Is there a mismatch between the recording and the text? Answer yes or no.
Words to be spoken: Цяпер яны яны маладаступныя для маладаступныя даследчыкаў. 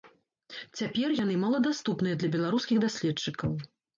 yes